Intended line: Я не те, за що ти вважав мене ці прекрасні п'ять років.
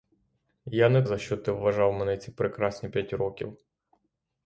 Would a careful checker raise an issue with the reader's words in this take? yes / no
yes